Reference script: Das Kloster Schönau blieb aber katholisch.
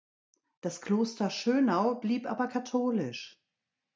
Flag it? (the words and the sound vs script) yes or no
no